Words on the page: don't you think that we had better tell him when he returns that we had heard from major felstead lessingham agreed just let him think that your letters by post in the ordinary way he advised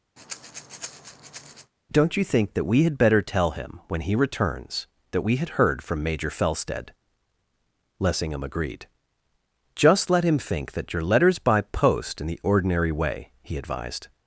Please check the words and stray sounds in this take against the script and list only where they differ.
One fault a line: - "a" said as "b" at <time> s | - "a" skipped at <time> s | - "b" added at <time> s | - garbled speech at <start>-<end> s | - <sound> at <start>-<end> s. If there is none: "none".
- breath at 0.2-1.7 s